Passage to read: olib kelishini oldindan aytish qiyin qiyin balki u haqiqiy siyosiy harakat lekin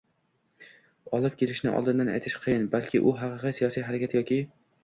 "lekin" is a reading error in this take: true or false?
true